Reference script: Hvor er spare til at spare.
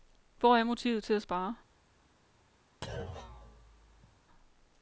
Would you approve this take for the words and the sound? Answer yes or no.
no